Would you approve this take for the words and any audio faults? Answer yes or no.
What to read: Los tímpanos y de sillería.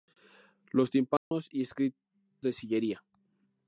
no